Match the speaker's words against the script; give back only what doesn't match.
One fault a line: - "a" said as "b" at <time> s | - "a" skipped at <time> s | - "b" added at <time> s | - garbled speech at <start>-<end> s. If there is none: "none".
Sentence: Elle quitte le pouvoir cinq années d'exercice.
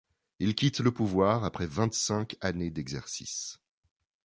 - "Elle" said as "Il" at 0.4 s
- "après vingt" added at 1.4 s